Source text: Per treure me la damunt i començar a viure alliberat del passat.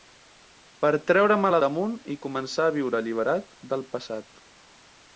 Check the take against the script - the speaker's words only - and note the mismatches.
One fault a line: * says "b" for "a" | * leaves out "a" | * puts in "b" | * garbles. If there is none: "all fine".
all fine